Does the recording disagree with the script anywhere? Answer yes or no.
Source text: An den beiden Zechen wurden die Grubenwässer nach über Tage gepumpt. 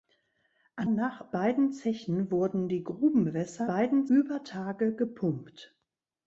yes